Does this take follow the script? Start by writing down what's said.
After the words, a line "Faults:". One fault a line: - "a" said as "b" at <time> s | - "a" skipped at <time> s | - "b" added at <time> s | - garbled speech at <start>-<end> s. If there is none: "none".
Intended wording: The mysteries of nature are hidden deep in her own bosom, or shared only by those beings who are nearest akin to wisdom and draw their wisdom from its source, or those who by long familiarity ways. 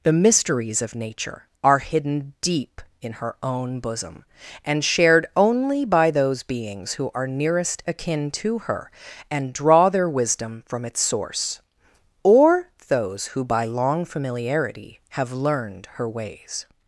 The mysteries of nature are hidden deep in her own bosom, and shared only by those beings who are nearest akin to her and draw their wisdom from its source, or those who by long familiarity have learned her ways.
Faults:
- "or" said as "and" at 4.7 s
- "wisdom" said as "her" at 8.6 s
- "have learned her" added at 15.1 s